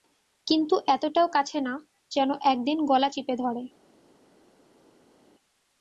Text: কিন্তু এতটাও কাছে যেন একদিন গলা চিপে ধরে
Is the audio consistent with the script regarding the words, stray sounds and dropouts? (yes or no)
no